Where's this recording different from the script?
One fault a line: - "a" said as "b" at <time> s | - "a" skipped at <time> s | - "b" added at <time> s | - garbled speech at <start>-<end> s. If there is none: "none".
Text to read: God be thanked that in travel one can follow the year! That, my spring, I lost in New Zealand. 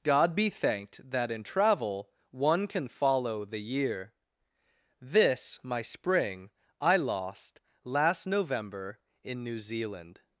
- "That" said as "This" at 5.0 s
- "last November" added at 7.8 s